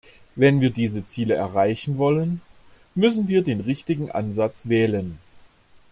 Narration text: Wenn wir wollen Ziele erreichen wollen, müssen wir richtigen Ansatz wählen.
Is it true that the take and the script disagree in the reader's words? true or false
true